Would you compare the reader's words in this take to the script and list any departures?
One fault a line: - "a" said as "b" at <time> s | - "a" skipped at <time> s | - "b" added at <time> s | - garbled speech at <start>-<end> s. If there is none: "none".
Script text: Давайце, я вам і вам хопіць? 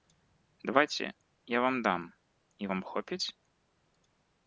- "дам" added at 1.8 s